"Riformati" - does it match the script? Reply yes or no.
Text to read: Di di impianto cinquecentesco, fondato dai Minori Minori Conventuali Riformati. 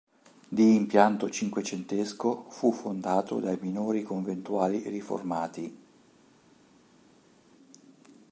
yes